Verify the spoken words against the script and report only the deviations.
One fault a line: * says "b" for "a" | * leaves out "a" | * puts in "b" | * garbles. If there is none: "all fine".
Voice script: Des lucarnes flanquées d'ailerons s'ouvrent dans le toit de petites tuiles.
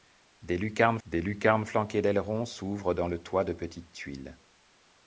* puts in "des lucarnes"